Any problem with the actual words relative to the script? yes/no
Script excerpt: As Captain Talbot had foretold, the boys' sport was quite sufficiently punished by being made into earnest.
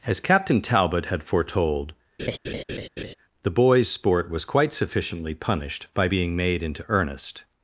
no